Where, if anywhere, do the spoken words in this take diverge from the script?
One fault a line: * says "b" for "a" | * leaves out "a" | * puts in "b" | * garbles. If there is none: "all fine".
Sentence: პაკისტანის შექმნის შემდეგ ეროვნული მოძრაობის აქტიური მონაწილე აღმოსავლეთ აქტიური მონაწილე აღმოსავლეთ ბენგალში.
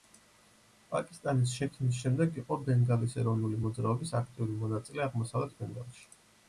* puts in "იყო ბენგალის"
* leaves out "აქტიური მონაწილე აღმოსავლეთ"